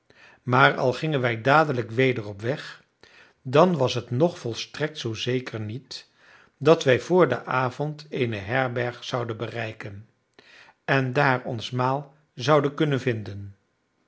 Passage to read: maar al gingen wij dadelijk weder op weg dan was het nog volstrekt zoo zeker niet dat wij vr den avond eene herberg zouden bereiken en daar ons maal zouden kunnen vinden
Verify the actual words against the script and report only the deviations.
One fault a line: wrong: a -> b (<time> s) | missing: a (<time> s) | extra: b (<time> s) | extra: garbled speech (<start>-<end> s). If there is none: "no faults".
no faults